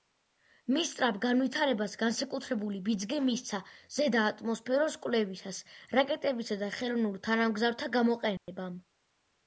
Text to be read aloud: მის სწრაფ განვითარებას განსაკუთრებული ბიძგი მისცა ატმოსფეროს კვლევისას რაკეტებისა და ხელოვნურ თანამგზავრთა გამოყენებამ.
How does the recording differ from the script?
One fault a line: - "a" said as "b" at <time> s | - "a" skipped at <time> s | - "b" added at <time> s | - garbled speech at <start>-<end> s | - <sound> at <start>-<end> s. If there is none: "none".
- "ზედა" added at 4.0 s
- dropout at 8.4-8.5 s